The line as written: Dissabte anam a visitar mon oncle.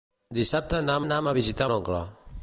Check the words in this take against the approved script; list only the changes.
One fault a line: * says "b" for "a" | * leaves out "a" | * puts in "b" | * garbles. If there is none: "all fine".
* puts in "anam"
* leaves out "mon"